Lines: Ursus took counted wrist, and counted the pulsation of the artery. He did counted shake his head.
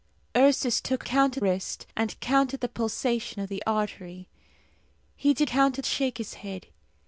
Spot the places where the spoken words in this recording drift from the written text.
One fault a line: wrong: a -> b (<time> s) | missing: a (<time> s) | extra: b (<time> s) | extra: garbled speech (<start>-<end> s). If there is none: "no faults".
no faults